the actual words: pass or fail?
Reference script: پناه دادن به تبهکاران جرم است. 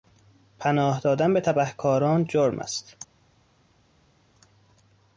pass